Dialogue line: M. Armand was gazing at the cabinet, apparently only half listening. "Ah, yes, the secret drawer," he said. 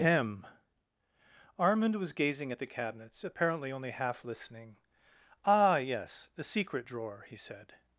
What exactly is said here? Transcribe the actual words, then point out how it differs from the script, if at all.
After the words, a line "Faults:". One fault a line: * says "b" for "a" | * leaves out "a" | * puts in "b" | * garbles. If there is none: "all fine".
M. Armand was gazing at the cabinets, apparently only half listening. "Ah, yes, the secret drawer," he said.
Faults:
* says "cabinets" for "cabinet"